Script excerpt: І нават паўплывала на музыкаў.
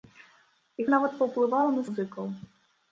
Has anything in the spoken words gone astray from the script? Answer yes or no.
no